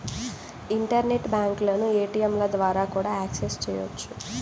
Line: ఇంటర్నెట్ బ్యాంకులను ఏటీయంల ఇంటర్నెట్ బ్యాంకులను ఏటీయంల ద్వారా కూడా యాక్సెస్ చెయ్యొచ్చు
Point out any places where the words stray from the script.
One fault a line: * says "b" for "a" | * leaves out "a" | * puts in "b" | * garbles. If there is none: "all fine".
* leaves out "ఇంటర్నెట్ బ్యాంకులను ఏటీయంల"